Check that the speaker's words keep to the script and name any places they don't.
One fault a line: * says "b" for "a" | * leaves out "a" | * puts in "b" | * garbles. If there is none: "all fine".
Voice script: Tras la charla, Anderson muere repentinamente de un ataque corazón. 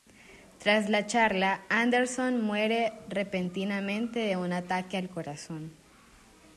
* puts in "al"